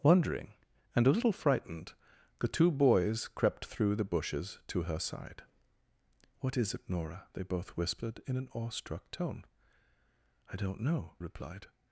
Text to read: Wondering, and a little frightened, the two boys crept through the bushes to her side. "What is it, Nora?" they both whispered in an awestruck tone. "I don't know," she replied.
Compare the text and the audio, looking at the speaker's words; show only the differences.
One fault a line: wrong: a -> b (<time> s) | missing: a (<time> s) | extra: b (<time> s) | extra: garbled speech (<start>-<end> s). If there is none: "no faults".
missing: she (11.1 s)